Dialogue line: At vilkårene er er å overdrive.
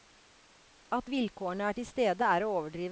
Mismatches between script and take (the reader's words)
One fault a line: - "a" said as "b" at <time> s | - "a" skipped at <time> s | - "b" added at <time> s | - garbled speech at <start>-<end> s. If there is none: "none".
- "til stede" added at 1.7 s